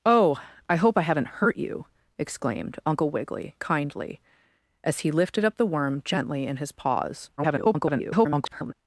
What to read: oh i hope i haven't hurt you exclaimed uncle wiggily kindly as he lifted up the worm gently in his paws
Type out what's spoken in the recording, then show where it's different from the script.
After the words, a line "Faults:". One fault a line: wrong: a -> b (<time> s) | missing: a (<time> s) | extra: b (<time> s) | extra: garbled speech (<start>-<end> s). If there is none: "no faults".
oh i hope i haven't hurt you exclaimed uncle wiggily kindly as he lifted up the worm gently in his paws [garbled]
Faults:
extra: garbled speech (7.4-8.7 s)